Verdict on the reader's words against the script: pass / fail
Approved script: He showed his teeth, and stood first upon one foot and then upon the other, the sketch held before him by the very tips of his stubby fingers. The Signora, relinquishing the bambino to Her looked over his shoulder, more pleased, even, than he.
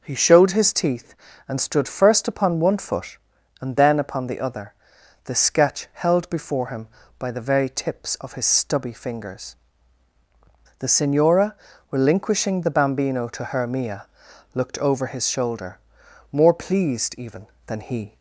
fail